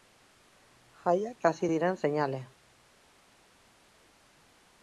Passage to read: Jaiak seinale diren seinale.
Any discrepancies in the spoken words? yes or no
yes